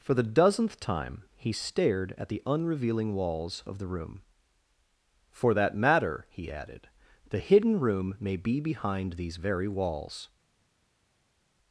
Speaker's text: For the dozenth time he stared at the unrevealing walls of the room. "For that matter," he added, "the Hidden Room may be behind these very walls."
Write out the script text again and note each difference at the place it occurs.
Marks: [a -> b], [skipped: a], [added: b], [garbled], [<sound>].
For the dozenth time he stared at the unrevealing walls of the room. "For that matter," he added, "the Hidden Room may be behind these very walls."